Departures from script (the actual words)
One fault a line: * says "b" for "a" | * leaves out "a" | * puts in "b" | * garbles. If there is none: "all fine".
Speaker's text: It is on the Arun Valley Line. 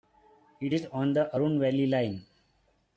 all fine